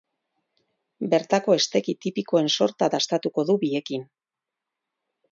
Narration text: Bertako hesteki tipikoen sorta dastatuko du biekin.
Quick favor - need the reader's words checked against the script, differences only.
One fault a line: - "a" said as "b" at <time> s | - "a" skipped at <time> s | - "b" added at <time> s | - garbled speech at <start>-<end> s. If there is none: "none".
none